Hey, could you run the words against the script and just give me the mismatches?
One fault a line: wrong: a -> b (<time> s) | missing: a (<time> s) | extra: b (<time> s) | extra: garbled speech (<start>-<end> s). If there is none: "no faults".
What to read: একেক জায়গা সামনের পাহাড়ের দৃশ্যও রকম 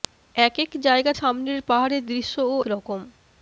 no faults